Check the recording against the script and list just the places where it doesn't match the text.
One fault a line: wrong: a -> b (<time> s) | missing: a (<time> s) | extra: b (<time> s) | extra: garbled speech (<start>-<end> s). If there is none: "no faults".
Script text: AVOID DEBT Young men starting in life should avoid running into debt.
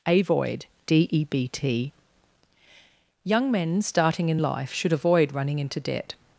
no faults